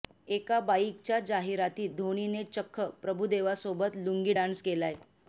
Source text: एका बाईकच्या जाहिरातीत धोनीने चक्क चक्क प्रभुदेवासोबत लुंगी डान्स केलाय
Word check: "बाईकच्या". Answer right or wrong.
right